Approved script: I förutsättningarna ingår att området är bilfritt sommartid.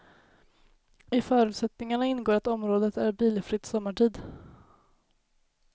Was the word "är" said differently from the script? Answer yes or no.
no